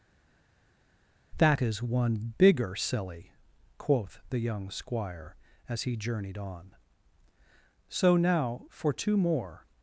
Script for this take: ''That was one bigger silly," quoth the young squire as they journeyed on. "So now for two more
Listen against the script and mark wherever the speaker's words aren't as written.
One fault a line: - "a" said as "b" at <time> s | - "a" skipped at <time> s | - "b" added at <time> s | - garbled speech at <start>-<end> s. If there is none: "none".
- "was" said as "is" at 1.6 s
- "they" said as "he" at 5.8 s